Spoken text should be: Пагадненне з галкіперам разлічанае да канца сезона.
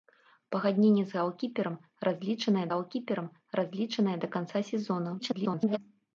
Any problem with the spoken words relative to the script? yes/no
yes